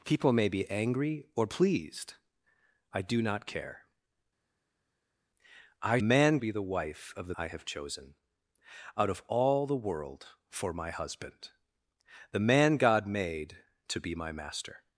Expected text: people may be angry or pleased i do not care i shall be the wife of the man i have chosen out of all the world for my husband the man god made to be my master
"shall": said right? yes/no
no